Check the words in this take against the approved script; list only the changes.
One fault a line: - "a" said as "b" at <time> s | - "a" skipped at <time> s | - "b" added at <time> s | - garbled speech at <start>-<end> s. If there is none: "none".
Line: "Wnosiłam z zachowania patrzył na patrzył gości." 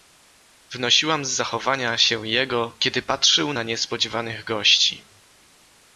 - "się jego kiedy" added at 2.0 s
- "patrzył" said as "niespodziewanych" at 3.6 s